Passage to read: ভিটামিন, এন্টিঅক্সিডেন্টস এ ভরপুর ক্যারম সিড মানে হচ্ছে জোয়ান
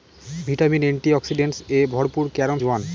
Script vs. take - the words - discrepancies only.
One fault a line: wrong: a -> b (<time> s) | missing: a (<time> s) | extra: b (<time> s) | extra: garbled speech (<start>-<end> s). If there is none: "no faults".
missing: সিড মানে হচ্ছে (2.6 s)